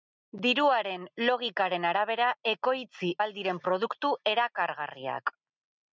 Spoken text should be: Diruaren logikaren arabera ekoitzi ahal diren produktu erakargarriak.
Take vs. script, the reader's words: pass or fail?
pass